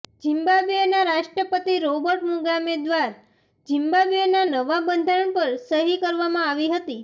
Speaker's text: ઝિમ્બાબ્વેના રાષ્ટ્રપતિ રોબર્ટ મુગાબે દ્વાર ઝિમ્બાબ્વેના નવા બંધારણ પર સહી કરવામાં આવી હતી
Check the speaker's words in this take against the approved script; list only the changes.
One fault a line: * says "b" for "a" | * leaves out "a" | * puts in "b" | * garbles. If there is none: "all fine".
all fine